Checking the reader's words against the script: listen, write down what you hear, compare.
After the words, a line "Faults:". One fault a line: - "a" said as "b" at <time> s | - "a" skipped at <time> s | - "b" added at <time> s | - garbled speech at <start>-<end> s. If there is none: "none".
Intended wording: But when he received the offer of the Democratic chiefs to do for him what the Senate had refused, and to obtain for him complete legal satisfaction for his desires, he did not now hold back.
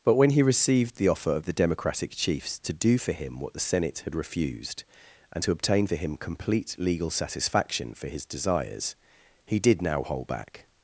But when he received the offer of the Democratic chiefs to do for him what the Senate had refused, and to obtain for him complete legal satisfaction for his desires, he did now hold back.
Faults:
- "not" skipped at 9.8 s